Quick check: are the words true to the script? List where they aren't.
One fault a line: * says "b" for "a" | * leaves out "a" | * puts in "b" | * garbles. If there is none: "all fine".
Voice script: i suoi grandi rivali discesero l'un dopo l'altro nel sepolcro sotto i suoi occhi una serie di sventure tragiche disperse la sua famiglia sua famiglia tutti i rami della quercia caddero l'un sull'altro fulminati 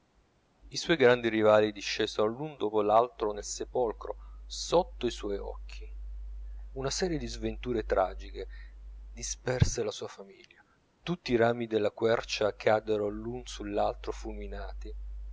* leaves out "sua famiglia"